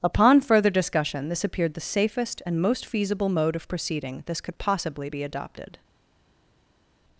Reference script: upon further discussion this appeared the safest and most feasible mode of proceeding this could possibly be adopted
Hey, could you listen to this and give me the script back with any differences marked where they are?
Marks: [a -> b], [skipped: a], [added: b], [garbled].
upon further discussion this appeared the safest and most feasible mode of proceeding this could possibly be adopted